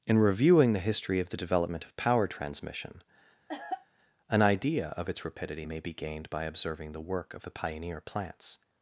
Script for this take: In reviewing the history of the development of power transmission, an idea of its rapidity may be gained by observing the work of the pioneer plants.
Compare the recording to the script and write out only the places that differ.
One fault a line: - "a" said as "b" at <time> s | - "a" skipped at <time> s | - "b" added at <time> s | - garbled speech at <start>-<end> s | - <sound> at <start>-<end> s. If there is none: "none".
- cough at 3.5-3.9 s